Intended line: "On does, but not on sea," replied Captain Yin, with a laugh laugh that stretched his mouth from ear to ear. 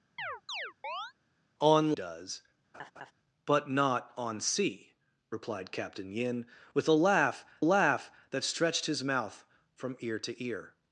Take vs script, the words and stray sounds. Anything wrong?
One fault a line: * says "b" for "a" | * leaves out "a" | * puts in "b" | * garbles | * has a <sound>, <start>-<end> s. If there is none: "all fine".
* has a chirp, 0.2-1.1 s
* has a laugh, 2.7-3.1 s